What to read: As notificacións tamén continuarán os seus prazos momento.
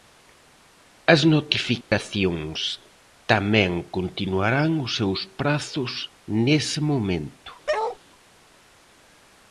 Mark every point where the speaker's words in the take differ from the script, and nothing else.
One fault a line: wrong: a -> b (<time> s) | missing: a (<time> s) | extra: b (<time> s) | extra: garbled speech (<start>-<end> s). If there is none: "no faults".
extra: nese (6.5 s)